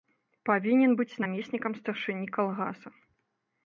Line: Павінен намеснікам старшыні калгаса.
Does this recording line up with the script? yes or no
no